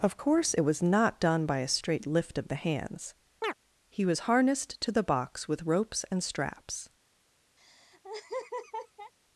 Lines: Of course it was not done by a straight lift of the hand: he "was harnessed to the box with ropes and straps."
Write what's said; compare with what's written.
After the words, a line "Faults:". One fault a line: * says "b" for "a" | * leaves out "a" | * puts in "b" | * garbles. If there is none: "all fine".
Of course it was not done by a straight lift of the hands: he "was harnessed to the box with ropes and straps."
Faults:
* says "hands" for "hand"